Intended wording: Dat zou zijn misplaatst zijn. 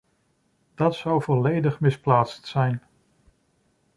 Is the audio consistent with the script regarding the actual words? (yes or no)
no